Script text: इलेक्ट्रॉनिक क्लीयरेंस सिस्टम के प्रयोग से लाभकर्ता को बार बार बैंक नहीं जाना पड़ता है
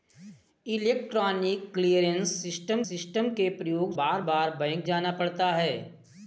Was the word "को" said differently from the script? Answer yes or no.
yes